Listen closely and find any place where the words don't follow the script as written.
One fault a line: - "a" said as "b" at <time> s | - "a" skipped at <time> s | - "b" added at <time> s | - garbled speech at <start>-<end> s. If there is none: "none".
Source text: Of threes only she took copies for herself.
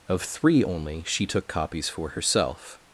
- "threes" said as "three" at 0.2 s